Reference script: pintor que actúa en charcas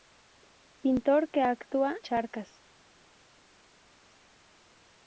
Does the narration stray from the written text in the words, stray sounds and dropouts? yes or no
yes